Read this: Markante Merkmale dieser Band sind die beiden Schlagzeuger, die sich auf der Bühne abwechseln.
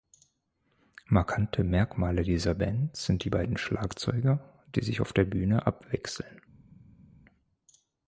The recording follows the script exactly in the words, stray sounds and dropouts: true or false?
true